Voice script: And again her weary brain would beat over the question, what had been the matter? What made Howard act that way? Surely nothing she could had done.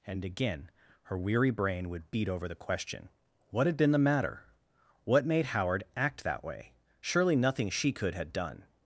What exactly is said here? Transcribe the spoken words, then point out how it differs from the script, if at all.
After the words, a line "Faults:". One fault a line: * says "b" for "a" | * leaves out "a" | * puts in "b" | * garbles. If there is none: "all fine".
And again her weary brain would beat over the question, what had been the matter? What made Howard act that way? Surely nothing she could had done.
Faults:
all fine